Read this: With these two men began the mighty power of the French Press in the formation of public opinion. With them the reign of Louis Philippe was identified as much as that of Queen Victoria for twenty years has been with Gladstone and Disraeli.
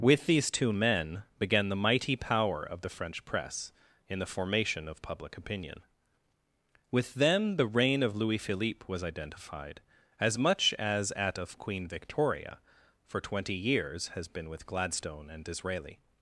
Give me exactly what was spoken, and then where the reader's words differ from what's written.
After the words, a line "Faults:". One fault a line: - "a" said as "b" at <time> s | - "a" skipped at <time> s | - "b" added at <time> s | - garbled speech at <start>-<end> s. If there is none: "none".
With these two men began the mighty power of the French Press in the formation of public opinion. With them the reign of Louis Philippe was identified as much as at of Queen Victoria for twenty years has been with Gladstone and Disraeli.
Faults:
- "that" said as "at" at 11.1 s